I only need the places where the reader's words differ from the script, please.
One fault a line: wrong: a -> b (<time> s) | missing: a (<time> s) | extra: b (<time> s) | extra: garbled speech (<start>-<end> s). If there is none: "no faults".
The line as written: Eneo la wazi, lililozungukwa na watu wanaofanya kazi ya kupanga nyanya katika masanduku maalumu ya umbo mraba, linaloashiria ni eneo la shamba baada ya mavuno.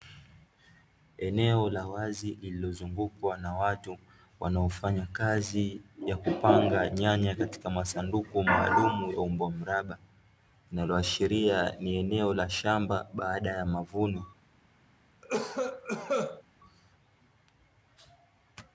no faults